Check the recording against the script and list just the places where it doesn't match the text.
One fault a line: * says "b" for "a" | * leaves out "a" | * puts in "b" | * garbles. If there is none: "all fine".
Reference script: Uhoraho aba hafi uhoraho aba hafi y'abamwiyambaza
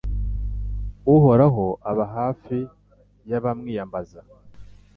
* leaves out "uhoraho aba hafi"